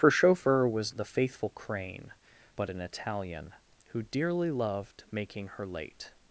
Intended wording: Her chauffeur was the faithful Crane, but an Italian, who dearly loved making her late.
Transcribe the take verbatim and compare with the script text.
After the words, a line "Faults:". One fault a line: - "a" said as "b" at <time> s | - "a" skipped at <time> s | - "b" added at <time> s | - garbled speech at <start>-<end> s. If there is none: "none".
Her chauffeur was the faithful Crane, but an Italian, who dearly loved making her late.
Faults:
none